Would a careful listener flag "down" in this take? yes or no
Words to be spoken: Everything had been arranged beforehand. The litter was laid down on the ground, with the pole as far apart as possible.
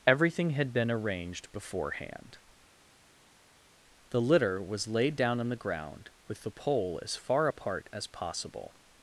no